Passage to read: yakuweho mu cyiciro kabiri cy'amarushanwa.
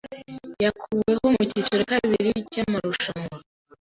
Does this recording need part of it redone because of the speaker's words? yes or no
no